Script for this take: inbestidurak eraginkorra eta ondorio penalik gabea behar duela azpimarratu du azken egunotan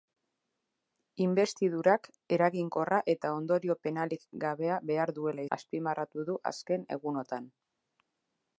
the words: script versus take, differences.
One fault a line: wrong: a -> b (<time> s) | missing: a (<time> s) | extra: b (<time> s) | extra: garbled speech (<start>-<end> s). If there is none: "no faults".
no faults